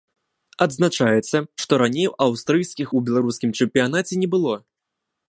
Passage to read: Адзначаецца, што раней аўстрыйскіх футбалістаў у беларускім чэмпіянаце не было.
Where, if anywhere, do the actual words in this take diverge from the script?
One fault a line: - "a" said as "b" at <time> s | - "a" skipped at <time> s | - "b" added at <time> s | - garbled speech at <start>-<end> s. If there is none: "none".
- "футбалістаў" skipped at 2.9 s